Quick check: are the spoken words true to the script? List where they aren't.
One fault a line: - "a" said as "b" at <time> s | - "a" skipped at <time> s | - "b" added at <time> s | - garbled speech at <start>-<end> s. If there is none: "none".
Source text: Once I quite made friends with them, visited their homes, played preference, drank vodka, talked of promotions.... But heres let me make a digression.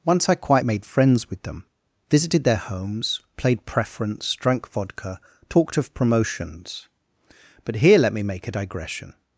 - "heres" said as "here" at 7.8 s